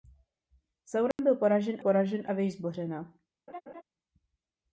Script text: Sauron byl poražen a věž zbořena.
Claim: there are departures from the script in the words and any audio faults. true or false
true